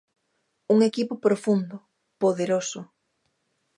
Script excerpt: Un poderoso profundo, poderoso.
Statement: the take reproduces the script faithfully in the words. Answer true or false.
false